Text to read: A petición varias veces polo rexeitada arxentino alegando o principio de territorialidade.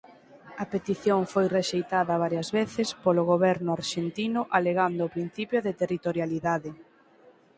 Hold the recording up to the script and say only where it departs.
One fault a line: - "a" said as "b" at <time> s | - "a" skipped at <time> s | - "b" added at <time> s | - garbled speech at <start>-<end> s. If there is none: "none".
- "foi rexeitada" added at 1.3 s
- "rexeitada" said as "goberno" at 3.3 s